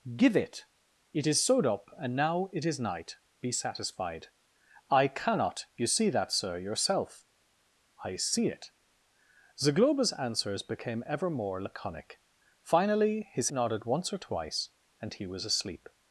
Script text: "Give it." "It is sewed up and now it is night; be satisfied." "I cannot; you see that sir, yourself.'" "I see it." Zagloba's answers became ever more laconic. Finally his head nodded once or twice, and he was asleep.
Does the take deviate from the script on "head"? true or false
true